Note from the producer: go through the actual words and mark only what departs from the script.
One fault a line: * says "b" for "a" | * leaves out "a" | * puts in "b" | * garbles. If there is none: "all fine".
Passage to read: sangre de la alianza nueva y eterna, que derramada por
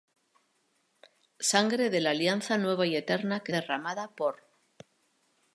all fine